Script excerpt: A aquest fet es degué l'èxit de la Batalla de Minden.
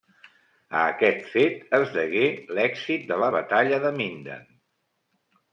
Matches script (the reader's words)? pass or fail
pass